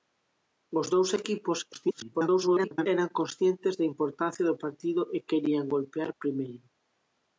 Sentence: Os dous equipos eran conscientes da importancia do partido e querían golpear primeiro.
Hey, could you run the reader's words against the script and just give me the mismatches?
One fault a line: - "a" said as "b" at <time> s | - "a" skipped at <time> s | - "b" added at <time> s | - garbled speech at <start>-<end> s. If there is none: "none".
- garbled speech at 1.7-2.9 s